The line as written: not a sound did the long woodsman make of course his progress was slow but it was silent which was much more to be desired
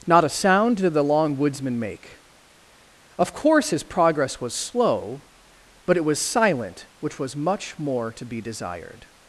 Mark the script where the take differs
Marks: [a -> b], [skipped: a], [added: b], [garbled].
not a sound did the long woodsman make of course his progress was slow but it was silent which was much more to be desired